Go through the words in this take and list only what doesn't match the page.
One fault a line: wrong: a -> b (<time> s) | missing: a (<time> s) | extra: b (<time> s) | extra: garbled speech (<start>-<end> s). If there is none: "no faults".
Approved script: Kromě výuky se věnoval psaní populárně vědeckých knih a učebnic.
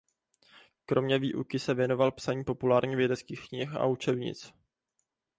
no faults